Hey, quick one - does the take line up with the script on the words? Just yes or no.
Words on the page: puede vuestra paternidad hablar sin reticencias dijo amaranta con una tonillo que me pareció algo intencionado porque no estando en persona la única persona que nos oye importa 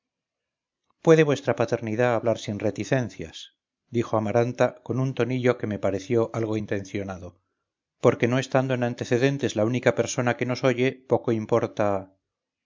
no